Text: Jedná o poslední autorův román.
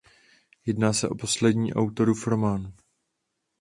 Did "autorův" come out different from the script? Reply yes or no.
no